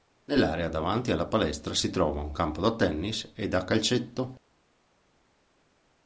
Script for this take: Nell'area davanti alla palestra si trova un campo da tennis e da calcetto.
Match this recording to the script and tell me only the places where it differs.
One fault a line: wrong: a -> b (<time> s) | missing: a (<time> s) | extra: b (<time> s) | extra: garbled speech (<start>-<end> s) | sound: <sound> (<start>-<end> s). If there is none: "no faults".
no faults